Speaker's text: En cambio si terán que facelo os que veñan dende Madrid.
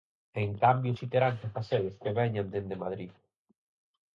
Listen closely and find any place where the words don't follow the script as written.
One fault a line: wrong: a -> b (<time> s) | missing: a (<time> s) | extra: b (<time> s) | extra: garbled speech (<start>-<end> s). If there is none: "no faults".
no faults